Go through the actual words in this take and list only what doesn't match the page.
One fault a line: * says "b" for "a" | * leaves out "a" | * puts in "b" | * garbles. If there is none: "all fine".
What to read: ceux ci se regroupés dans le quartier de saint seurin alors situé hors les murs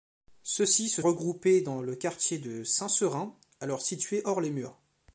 all fine